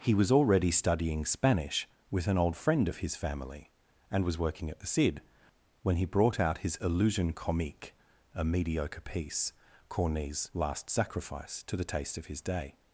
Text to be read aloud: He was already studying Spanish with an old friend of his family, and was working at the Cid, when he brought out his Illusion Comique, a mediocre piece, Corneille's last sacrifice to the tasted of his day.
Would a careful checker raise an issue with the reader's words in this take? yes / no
yes